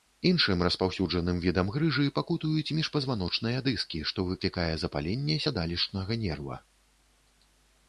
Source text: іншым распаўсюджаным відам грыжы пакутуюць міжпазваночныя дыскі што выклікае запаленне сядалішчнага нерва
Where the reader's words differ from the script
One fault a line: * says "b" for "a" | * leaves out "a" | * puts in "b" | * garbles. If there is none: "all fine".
all fine